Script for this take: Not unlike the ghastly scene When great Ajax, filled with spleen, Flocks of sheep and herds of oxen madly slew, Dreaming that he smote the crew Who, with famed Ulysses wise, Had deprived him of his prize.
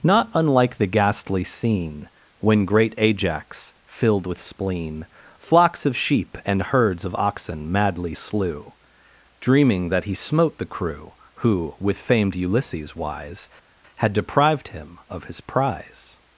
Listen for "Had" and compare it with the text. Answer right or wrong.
right